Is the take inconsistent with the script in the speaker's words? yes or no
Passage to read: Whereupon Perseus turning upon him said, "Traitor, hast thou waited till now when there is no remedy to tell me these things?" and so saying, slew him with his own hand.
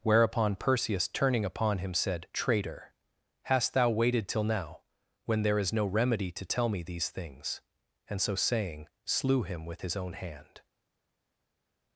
no